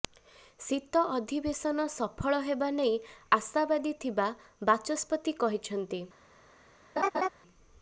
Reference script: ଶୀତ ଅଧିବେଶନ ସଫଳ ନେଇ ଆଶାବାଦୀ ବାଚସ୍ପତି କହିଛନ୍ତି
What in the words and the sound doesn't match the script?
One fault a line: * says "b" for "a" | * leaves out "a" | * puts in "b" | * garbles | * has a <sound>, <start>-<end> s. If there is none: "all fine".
* puts in "ହେବା"
* puts in "ଥିବା"
* has a laugh, 7.0-7.3 s